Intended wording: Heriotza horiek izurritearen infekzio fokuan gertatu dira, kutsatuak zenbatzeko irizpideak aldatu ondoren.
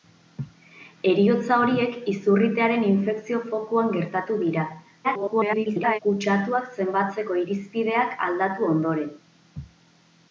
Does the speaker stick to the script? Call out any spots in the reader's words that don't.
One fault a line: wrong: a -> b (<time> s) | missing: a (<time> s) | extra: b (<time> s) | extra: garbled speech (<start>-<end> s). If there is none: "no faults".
extra: garbled speech (5.0-6.0 s)